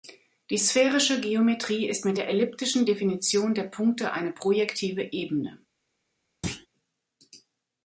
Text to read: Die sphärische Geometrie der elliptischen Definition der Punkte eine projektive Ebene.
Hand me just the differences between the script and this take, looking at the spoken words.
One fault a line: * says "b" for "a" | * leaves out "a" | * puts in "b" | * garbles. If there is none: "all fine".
* puts in "ist mit"